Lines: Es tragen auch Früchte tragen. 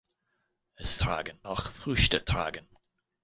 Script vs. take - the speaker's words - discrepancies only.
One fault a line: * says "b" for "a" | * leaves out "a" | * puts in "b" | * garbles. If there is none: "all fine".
all fine